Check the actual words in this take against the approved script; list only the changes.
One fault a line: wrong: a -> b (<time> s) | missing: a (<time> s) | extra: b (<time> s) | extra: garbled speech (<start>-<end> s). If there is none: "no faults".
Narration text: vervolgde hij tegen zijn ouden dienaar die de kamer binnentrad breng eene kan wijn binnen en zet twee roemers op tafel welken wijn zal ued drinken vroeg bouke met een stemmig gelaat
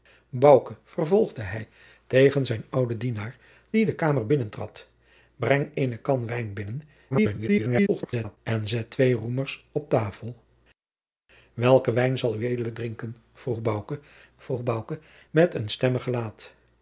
extra: garbled speech (7.1-8.4 s)
extra: vroeg bouke (14.4 s)